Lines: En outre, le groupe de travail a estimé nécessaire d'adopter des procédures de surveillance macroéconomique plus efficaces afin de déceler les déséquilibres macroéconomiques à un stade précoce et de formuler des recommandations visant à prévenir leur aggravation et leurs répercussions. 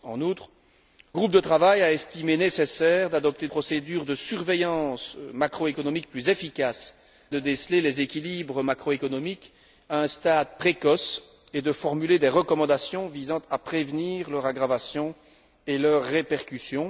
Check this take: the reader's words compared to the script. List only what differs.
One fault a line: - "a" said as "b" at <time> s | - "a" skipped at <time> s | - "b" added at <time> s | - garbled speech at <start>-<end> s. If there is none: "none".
- "le" skipped at 0.5 s
- "des" skipped at 3.5 s
- "afin" skipped at 7.0 s